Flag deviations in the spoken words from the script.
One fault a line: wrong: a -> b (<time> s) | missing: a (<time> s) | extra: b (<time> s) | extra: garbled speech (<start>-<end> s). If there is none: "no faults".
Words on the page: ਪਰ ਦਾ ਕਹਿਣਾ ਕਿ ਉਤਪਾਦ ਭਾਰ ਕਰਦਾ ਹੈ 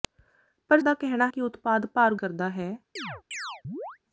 no faults